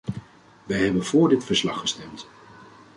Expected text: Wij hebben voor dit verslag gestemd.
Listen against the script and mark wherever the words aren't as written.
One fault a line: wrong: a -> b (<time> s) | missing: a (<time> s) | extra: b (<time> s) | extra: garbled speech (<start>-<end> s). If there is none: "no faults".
no faults